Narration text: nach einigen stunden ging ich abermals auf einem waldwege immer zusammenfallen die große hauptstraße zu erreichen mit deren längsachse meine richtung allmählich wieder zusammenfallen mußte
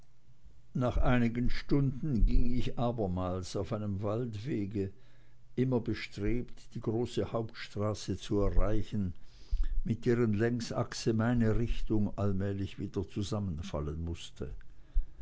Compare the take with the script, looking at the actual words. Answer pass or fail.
fail